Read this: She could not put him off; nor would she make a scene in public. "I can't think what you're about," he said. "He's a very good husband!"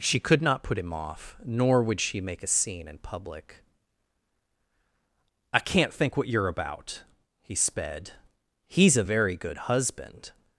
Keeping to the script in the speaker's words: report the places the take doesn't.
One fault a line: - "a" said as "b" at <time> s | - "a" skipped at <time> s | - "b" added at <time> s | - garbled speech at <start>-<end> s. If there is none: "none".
- "said" said as "sped" at 7.5 s